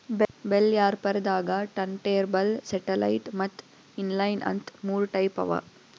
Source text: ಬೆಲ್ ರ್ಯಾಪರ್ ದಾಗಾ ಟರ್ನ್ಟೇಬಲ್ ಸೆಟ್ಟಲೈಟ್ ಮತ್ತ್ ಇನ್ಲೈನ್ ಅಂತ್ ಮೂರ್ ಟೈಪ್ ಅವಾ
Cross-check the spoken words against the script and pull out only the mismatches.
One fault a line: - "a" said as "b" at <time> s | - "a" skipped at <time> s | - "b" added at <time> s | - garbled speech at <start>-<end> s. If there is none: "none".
none